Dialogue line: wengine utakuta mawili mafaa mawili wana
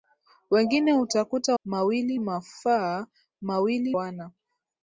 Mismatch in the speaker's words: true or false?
false